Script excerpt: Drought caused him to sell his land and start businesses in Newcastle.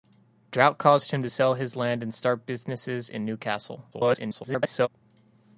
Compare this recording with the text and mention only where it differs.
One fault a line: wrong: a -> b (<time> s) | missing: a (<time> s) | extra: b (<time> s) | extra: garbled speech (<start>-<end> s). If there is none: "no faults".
extra: garbled speech (3.9-4.9 s)